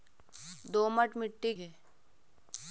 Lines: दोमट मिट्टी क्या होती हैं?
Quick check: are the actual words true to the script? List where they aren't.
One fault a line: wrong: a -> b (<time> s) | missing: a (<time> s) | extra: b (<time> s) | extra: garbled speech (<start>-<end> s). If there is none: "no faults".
missing: क्या होती (1.5 s)